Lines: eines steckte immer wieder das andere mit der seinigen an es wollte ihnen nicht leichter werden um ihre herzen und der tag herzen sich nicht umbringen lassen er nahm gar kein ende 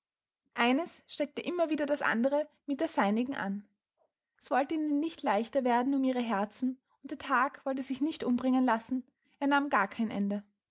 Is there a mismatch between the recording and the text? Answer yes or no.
yes